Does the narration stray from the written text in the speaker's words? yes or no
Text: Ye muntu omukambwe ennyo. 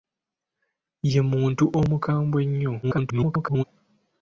yes